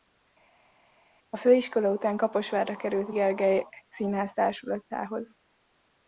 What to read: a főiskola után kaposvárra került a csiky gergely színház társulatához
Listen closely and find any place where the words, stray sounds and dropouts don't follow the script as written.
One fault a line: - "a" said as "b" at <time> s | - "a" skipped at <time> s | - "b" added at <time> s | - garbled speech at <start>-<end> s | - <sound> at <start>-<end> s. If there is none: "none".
- "csiky" skipped at 3.1 s